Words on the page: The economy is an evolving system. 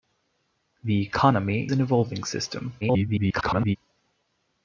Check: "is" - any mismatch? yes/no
yes